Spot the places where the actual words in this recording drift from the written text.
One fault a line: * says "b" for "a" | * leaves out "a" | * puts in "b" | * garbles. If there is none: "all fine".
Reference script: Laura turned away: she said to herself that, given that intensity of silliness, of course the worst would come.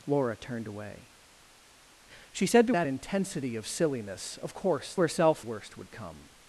* leaves out "herself"
* leaves out "given that"
* says "herself" for "the"